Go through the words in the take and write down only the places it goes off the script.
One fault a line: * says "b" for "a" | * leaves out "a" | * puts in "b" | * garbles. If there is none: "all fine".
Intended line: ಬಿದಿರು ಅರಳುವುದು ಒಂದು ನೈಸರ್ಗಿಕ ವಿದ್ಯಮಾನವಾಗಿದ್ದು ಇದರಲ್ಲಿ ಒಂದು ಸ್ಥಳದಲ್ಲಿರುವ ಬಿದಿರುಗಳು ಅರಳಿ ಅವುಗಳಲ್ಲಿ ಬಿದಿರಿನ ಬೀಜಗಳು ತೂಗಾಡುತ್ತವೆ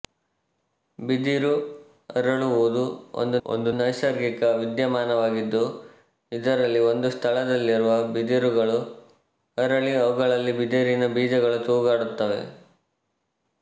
* puts in "ಒಂದು"